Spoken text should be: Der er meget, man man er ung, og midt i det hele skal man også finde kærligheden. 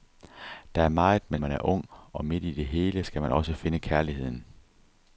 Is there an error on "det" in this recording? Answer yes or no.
no